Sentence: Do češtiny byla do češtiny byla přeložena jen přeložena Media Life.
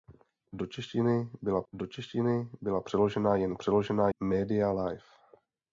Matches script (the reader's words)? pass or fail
pass